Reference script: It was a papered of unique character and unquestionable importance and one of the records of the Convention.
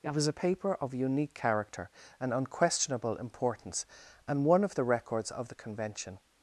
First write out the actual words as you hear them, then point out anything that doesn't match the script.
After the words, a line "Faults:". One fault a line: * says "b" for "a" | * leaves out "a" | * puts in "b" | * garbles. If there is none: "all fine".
It was a paper of unique character and unquestionable importance and one of the records of the Convention.
Faults:
* says "paper" for "papered"